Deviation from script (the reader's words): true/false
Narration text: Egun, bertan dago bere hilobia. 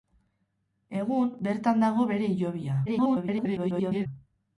true